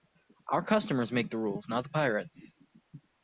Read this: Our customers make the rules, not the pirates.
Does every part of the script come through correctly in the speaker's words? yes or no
yes